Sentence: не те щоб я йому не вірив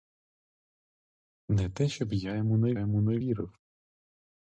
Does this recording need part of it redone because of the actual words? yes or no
yes